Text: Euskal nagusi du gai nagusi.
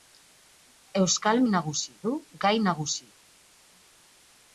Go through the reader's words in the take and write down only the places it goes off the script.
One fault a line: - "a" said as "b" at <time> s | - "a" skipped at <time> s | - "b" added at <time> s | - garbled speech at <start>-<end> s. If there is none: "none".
none